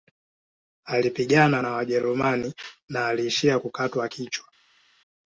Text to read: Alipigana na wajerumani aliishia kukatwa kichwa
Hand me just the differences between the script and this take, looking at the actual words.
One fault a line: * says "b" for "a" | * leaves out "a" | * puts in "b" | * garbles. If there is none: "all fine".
* puts in "na"